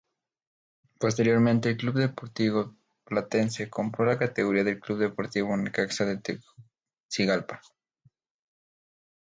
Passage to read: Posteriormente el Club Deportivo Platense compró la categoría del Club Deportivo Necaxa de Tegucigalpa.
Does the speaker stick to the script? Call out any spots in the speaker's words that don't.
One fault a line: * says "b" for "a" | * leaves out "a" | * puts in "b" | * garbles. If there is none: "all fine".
all fine